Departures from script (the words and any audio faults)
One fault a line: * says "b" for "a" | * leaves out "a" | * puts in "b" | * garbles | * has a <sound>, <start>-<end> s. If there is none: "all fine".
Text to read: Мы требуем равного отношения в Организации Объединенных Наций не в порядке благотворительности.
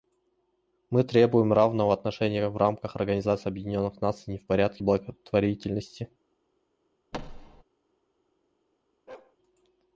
* puts in "рамках"
* has a thud, 7.1-7.6 s
* has a bark, 9.1-9.4 s